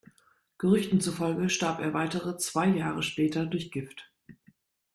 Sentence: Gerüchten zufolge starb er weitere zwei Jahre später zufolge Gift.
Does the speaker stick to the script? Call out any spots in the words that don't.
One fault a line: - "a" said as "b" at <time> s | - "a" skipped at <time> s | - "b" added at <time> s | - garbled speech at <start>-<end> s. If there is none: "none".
- "zufolge" said as "durch" at 3.5 s